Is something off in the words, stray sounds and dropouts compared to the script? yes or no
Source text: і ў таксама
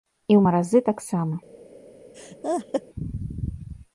yes